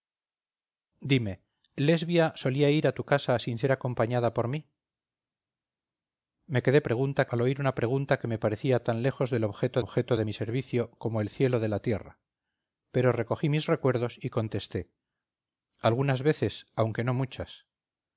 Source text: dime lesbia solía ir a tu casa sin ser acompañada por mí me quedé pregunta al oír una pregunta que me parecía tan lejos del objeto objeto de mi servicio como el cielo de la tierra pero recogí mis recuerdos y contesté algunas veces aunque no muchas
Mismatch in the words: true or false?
false